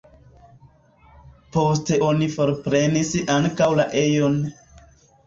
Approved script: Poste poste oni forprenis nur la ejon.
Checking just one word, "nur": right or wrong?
wrong